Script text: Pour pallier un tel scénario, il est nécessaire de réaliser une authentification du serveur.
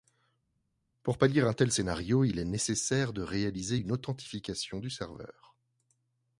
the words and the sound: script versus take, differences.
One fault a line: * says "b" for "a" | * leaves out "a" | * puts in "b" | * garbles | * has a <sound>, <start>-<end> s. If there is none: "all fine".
all fine